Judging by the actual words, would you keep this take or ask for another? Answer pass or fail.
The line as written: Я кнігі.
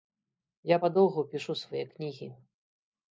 fail